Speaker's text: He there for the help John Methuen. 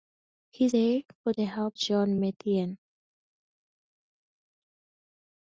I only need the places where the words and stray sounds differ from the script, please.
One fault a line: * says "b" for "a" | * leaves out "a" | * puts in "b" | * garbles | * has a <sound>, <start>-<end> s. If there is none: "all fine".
all fine